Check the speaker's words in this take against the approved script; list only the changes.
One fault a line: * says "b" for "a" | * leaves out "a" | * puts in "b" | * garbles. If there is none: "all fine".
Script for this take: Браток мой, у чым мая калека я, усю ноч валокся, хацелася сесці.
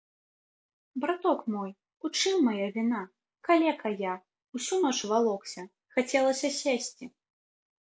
* puts in "віна"